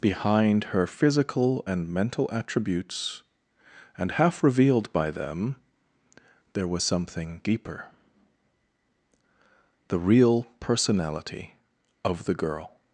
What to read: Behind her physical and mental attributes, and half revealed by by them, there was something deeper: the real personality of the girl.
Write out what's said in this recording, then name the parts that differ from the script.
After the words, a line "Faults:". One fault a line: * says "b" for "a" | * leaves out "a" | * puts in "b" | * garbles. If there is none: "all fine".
Behind her physical and mental attributes, and half revealed by them, there was something deeper: the real personality of the girl.
Faults:
* leaves out "by"